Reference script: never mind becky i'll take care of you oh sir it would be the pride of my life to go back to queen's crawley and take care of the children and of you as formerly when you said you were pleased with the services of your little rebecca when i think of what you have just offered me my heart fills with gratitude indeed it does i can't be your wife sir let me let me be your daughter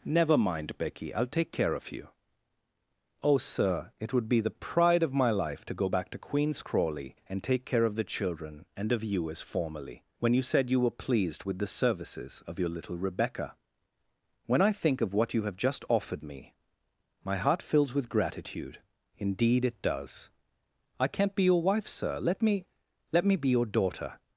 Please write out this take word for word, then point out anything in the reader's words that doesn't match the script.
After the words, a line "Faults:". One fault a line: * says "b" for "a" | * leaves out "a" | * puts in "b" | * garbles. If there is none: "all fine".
never mind becky i'll take care of you oh sir it would be the pride of my life to go back to queen's crawley and take care of the children and of you as formerly when you said you were pleased with the services of your little rebecca when i think of what you have just offered me my heart fills with gratitude indeed it does i can't be your wife sir let me let me be your daughter
Faults:
all fine